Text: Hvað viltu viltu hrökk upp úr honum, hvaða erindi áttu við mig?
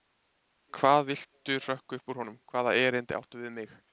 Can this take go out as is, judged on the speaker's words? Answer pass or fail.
fail